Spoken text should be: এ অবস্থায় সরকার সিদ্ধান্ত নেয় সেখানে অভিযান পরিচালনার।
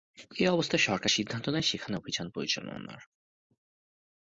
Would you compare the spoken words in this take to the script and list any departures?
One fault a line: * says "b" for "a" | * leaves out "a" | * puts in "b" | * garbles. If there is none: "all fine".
all fine